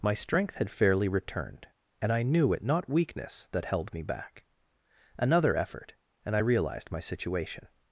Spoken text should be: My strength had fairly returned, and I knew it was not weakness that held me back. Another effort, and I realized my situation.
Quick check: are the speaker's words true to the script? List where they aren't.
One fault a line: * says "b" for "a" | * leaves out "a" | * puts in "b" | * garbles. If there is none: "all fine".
* leaves out "was"